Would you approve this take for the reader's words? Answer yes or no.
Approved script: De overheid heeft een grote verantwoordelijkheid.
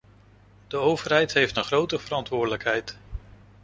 yes